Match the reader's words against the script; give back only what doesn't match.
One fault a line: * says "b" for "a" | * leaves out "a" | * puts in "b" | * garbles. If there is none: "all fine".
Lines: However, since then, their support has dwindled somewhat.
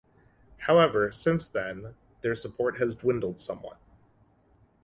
all fine